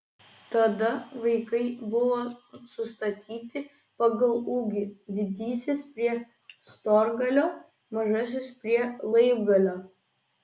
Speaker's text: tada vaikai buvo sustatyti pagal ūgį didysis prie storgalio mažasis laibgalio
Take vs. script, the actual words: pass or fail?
fail